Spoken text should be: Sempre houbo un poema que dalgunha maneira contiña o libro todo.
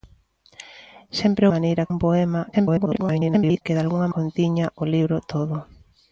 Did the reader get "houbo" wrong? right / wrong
wrong